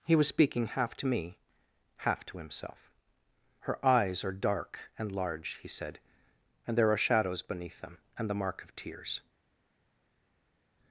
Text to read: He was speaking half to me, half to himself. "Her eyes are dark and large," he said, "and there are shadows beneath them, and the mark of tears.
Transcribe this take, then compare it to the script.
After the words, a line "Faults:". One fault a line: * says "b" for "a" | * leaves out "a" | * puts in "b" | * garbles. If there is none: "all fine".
He was speaking half to me, half to himself. "Her eyes are dark and large," he said, "and there are shadows beneath them, and the mark of tears.
Faults:
all fine